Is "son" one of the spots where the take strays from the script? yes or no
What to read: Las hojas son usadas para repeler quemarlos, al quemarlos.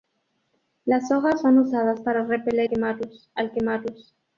no